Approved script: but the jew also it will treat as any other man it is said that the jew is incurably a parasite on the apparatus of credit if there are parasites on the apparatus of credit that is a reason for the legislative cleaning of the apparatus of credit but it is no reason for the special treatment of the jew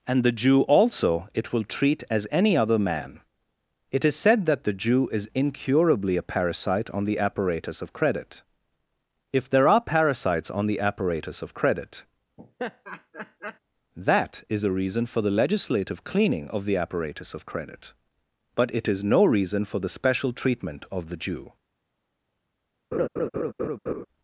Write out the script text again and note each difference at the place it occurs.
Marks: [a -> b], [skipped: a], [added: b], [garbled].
[but -> and] the jew also it will treat as any other man it is said that the jew is incurably a parasite on the apparatus of credit if there are parasites on the apparatus of credit that is a reason for the legislative cleaning of the apparatus of credit but it is no reason for the special treatment of the jew